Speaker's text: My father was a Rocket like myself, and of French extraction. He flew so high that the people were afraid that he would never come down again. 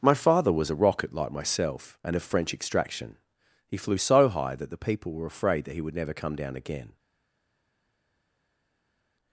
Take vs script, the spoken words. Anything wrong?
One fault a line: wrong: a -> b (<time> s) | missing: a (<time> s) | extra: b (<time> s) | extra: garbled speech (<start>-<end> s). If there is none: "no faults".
no faults